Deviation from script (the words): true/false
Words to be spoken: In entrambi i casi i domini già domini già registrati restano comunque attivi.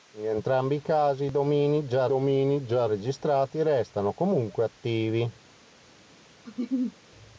false